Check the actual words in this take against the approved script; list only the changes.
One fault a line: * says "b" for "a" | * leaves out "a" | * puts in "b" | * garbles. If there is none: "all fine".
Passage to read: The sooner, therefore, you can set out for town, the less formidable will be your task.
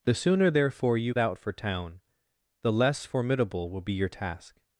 * leaves out "can set"